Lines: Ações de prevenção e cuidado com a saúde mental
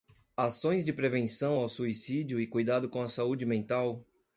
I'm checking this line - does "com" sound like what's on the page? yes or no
yes